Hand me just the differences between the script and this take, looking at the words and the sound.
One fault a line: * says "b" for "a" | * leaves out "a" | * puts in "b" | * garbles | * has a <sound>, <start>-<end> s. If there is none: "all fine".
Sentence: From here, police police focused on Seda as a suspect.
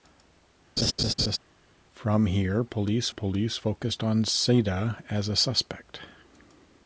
* has a laugh, 0.8-1.4 s